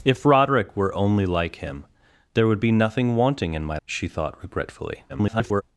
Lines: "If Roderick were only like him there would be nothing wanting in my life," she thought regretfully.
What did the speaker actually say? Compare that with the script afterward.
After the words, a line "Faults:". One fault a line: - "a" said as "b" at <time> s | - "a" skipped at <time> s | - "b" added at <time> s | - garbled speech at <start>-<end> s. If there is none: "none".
"If Roderick were only like him there would be nothing wanting in my," she thought regretfully. [garbled]
Faults:
- "life" skipped at 3.8 s
- garbled speech at 5.1-5.6 s